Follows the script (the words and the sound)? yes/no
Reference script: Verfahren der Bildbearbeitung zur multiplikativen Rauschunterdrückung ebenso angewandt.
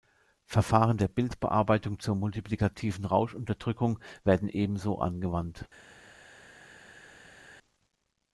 no